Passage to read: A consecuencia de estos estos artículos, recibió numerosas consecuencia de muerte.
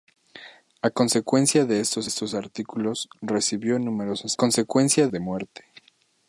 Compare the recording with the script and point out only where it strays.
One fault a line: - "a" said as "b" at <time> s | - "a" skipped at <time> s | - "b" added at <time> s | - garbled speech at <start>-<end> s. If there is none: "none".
none